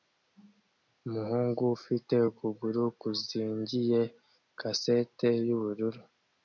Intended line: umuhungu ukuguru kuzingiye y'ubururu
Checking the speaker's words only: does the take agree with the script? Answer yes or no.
no